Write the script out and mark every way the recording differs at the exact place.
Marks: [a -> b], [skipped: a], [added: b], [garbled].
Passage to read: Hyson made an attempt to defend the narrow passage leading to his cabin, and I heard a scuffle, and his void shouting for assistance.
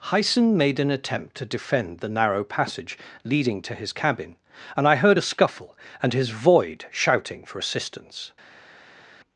Hyson made an attempt to defend the narrow passage leading to his cabin, and I heard a scuffle, and his void shouting for assistance.